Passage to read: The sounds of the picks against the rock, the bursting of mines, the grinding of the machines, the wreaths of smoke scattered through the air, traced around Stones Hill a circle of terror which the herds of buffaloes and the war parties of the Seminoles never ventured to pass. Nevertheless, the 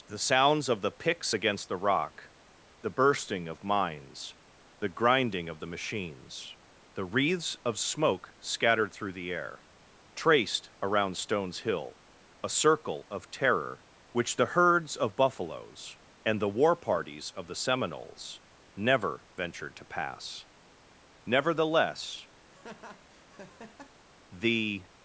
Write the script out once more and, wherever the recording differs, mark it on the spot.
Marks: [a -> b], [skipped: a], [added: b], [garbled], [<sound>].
The sounds of the picks against the rock, the bursting of mines, the grinding of the machines, the wreaths of smoke scattered through the air, traced around Stones Hill a circle of terror which the herds of buffaloes and the war parties of the Seminoles never ventured to pass. Nevertheless, [laugh] the